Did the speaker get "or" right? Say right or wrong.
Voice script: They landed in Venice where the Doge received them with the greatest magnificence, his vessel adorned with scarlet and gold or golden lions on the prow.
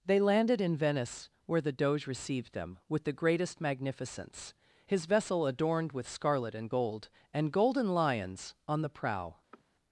wrong